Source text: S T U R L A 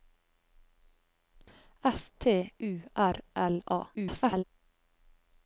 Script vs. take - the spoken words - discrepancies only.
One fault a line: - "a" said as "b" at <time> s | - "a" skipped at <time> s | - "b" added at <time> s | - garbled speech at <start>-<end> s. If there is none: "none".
- garbled speech at 3.9-4.4 s